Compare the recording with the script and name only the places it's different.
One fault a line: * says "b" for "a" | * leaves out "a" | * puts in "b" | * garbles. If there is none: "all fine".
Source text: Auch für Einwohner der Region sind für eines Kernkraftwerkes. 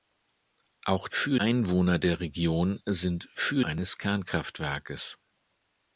all fine